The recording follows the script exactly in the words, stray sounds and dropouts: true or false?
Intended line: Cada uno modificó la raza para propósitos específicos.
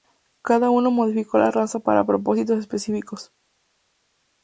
true